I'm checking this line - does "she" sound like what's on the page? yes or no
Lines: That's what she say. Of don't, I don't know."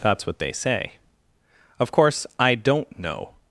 no